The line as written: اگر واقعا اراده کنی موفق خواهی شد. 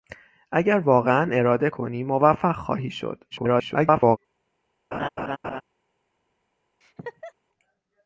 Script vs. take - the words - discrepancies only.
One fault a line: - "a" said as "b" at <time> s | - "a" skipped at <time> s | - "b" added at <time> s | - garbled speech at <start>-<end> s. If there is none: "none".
- garbled speech at 3.3-4.2 s